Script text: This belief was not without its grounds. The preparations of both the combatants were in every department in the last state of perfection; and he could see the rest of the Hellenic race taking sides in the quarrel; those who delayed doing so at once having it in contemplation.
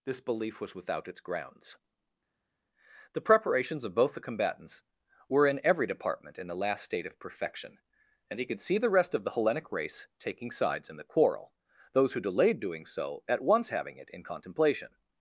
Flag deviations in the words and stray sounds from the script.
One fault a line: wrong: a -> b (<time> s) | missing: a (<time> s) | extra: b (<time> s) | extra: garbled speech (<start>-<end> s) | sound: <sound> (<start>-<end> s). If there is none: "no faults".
missing: not (0.8 s)